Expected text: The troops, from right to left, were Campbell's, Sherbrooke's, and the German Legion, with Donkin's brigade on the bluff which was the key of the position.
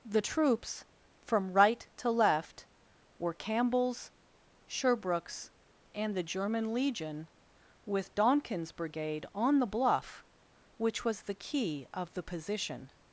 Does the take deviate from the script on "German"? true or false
false